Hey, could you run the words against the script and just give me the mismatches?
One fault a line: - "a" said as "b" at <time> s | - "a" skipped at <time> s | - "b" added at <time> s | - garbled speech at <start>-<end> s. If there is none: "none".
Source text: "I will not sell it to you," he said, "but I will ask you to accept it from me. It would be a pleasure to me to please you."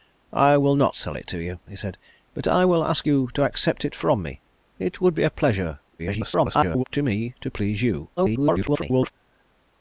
- garbled speech at 6.0-6.8 s
- garbled speech at 8.2-9.1 s